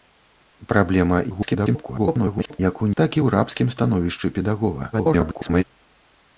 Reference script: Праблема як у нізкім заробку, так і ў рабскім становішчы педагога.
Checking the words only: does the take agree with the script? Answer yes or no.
no